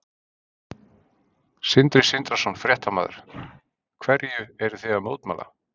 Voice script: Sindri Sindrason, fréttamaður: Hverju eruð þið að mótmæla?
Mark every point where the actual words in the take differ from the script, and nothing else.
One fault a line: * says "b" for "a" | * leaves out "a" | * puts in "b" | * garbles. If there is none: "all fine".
all fine